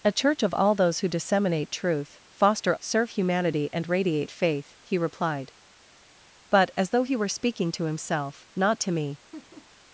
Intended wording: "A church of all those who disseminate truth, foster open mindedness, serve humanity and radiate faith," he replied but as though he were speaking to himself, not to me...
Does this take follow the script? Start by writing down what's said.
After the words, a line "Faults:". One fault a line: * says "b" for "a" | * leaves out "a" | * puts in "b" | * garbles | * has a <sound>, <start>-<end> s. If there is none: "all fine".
"A church of all those who disseminate truth, foster serve humanity and radiate faith," he replied but as though he were speaking to himself, not to me...
Faults:
* leaves out "open mindedness"
* has a laugh, 9.3-9.7 s